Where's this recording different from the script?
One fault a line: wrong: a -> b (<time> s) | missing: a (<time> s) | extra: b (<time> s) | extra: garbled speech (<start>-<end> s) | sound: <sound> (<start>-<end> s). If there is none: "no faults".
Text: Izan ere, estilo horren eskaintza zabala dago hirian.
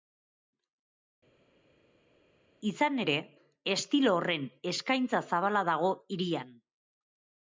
no faults